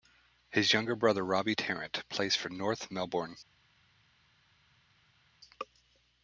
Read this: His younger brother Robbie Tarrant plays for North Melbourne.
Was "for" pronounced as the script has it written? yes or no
yes